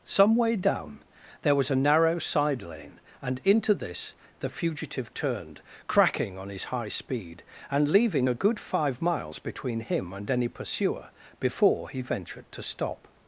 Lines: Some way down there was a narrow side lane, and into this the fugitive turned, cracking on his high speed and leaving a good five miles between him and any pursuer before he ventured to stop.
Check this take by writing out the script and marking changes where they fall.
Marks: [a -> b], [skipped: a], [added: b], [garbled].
Some way down there was a narrow side lane, and into this the fugitive turned, cracking on his high speed and leaving a good five miles between him and any pursuer before he ventured to stop.